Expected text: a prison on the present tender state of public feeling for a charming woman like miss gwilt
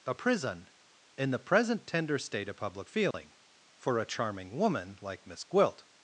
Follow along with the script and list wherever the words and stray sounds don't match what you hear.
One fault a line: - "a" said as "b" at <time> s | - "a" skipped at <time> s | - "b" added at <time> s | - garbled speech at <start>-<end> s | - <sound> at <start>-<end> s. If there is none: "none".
- "on" said as "in" at 1.2 s
- dropout at 3.1-3.1 s